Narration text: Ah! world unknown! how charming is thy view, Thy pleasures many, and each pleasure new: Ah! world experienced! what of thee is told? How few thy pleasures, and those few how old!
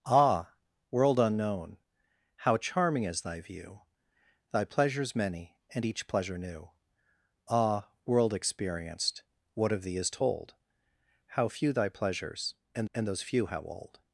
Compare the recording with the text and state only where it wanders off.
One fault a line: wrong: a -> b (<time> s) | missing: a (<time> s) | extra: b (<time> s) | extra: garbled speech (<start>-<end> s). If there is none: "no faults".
extra: and (12.9 s)